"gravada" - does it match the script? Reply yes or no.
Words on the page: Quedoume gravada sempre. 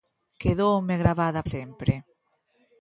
yes